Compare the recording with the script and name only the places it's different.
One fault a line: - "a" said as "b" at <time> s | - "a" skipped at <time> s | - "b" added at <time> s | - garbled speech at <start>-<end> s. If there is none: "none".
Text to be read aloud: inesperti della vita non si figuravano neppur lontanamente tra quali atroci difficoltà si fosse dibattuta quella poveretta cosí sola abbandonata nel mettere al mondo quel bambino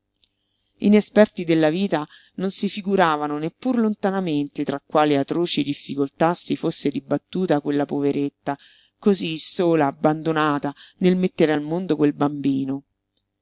none